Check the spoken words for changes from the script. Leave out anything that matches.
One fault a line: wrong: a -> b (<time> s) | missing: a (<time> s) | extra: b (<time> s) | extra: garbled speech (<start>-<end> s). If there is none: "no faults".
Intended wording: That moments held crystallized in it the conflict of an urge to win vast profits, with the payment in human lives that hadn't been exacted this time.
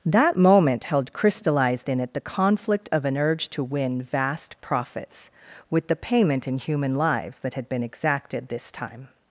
wrong: moments -> moment (0.3 s)
wrong: hadn't -> had (7.5 s)